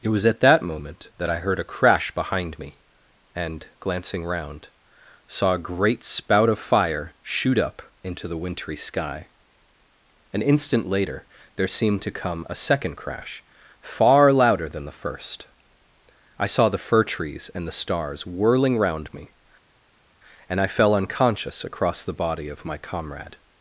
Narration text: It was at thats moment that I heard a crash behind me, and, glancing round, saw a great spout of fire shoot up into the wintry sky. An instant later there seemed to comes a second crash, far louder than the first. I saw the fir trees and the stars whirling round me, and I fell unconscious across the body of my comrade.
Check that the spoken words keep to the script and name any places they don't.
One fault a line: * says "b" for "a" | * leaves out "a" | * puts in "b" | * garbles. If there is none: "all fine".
* says "that" for "thats"
* says "come" for "comes"